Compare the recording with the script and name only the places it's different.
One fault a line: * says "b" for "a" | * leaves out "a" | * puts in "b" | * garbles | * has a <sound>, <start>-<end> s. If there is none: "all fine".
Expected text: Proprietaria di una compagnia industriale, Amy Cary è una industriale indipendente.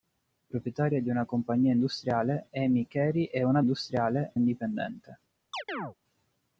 * has a chirp, 5.5-5.9 s